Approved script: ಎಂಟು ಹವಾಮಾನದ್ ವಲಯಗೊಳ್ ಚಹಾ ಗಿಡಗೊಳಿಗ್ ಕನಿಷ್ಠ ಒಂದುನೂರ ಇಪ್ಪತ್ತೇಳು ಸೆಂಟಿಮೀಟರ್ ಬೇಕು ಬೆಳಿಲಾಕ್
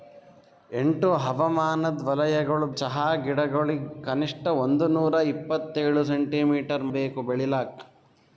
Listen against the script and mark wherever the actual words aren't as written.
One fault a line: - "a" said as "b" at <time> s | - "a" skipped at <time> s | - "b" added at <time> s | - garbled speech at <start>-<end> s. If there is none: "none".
none